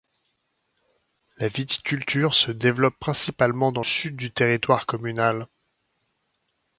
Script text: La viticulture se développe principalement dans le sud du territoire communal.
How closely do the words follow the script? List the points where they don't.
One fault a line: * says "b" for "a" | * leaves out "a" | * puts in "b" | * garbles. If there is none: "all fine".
* leaves out "le"